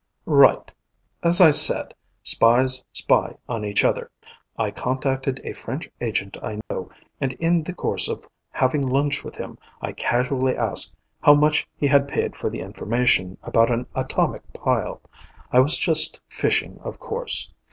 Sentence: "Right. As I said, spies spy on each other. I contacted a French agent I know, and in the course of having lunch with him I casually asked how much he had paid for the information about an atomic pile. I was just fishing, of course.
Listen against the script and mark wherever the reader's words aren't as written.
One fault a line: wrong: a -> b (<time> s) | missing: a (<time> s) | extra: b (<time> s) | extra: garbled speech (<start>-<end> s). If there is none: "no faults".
no faults